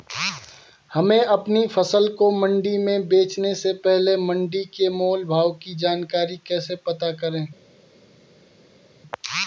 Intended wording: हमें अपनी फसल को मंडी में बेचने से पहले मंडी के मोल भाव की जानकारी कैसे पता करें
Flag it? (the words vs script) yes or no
no